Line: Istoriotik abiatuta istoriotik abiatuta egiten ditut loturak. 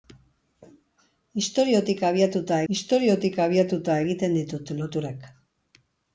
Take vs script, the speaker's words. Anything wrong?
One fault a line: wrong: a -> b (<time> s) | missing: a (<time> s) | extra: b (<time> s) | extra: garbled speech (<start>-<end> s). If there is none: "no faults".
no faults